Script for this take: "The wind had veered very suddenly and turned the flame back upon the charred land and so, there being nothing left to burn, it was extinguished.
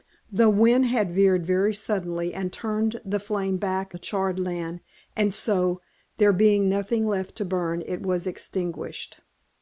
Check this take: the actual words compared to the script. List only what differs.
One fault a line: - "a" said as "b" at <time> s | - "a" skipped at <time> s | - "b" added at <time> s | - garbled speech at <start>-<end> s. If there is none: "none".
- "upon" skipped at 3.9 s